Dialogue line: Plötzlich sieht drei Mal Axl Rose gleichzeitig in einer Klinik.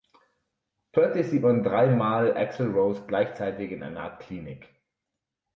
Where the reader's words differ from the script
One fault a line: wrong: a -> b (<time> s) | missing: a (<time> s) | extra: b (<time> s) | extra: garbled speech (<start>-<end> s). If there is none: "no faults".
extra: man (1.4 s)
extra: Art (4.0 s)